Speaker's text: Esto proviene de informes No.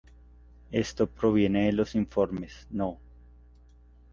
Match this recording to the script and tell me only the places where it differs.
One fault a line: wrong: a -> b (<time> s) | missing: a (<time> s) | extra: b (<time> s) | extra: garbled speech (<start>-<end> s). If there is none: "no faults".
extra: los (1.7 s)